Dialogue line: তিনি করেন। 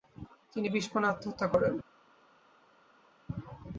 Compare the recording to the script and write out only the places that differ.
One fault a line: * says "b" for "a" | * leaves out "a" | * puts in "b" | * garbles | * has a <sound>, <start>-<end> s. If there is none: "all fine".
* puts in "বিষপানে আত্মহত্যা"